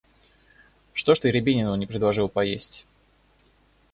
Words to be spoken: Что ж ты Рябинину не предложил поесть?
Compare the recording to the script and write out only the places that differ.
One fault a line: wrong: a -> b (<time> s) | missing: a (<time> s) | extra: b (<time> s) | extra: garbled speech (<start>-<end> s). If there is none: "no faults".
no faults